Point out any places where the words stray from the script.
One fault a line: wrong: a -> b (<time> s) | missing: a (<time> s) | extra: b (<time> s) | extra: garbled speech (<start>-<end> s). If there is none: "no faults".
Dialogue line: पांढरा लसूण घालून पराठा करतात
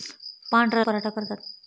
missing: लसूण घालून (0.8 s)